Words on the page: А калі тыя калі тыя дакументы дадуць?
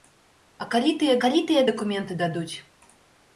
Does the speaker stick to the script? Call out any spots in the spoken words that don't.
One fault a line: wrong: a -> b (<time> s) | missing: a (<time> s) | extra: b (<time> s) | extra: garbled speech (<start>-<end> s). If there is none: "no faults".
no faults